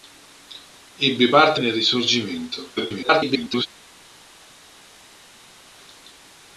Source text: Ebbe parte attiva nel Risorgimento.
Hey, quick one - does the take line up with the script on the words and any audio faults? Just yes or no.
no